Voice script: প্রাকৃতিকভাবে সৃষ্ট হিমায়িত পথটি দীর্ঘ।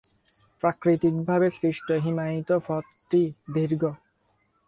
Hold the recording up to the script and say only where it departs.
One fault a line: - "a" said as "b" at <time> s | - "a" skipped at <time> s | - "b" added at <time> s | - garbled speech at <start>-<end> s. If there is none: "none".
none